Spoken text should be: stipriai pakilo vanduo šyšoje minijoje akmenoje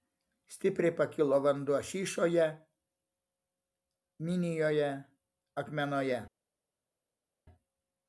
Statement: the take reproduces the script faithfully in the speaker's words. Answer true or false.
true